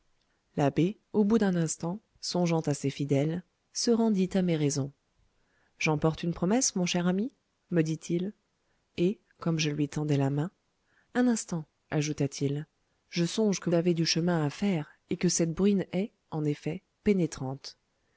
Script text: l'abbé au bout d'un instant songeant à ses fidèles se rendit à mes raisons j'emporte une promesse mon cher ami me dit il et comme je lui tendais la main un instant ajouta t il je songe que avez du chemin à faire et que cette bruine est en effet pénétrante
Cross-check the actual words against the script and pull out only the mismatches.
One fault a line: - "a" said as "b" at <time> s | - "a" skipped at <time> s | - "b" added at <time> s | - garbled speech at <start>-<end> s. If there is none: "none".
none